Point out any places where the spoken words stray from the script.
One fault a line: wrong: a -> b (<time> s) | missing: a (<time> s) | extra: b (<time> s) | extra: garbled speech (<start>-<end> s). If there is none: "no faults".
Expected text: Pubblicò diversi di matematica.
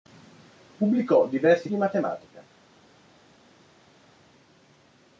no faults